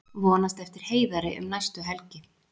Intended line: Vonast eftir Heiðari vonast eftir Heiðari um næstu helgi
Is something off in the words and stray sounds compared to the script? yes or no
yes